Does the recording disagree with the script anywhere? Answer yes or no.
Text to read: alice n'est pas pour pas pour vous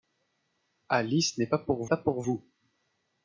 no